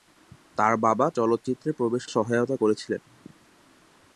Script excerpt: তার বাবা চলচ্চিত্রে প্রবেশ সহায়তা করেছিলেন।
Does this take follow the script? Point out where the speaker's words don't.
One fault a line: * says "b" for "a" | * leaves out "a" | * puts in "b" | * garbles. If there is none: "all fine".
all fine